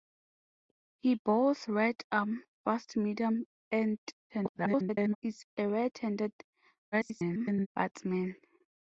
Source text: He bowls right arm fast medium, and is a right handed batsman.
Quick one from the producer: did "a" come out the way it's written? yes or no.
yes